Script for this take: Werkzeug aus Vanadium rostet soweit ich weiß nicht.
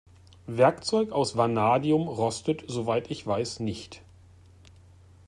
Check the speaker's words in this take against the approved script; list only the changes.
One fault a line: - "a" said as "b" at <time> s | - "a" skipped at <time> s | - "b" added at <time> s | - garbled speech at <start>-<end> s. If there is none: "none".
none